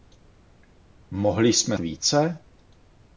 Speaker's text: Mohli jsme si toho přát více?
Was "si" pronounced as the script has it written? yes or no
no